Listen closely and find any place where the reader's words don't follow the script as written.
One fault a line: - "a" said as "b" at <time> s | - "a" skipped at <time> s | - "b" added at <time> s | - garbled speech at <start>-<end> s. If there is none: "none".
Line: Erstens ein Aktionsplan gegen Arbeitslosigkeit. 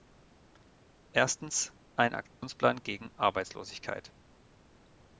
none